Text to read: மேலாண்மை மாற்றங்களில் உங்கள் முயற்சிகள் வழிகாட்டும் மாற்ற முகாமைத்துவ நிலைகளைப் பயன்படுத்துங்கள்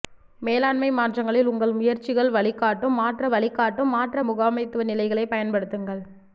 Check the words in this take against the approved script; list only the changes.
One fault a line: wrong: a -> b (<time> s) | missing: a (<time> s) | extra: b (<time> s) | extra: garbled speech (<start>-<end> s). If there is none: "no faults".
extra: வழிகாட்டும் மாற்ற (3.3 s)